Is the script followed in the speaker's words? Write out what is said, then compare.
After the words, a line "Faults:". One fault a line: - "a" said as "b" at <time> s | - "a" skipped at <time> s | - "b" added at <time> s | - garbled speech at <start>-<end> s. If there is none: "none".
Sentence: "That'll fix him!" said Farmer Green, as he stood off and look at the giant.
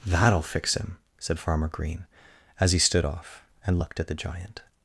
"That'll fix him!" said Farmer Green, as he stood off and looked at the giant.
Faults:
- "look" said as "looked" at 3.8 s